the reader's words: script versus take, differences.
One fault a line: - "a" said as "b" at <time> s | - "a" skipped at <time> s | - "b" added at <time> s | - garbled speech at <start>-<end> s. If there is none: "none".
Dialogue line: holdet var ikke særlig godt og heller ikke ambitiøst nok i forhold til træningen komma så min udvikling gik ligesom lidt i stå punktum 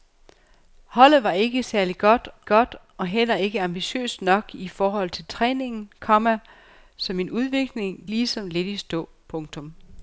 - "godt" added at 2.4 s
- "gik" skipped at 8.0 s